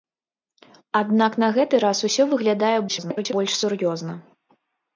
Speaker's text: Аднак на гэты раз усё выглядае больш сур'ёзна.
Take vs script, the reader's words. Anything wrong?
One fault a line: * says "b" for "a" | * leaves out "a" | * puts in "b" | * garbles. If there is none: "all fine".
* garbles